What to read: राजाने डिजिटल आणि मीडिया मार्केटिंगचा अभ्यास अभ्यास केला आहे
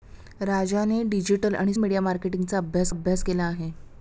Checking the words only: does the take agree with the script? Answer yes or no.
yes